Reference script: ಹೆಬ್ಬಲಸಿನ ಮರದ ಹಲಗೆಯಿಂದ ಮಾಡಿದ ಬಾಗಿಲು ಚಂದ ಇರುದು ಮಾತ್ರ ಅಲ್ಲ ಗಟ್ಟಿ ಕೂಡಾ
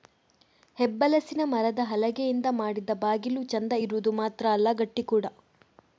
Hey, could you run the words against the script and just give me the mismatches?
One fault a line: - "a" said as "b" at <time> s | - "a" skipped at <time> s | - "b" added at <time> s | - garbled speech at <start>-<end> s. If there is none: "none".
none